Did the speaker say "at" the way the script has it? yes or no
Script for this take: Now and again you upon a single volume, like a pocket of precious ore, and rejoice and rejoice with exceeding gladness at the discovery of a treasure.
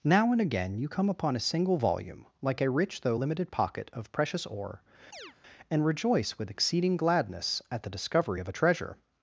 yes